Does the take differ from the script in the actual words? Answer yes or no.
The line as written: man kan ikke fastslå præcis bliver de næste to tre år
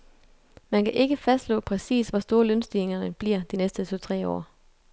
yes